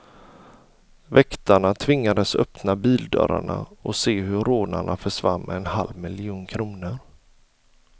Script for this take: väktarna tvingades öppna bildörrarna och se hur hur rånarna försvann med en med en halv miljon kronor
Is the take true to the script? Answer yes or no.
no